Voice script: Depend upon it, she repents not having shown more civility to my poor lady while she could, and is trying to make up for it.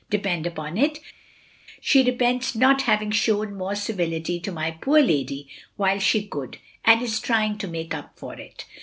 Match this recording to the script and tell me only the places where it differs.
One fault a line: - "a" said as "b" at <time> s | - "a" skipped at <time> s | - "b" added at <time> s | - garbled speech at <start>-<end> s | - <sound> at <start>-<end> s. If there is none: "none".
none